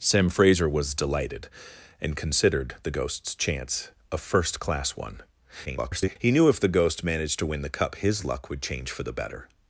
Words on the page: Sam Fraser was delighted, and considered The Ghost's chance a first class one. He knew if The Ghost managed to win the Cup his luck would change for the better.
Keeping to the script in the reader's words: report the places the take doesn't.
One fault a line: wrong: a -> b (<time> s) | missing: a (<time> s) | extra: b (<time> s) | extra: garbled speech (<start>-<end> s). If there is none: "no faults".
extra: garbled speech (5.7-6.2 s)